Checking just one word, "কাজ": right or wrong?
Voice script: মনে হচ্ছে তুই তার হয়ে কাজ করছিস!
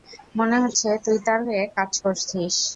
right